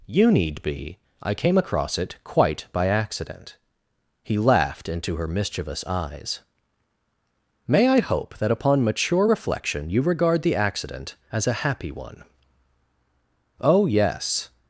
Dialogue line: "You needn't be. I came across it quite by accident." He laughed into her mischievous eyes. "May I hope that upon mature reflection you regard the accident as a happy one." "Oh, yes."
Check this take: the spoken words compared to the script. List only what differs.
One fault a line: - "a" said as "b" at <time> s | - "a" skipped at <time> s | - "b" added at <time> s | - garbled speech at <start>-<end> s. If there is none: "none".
- "needn't" said as "need" at 0.3 s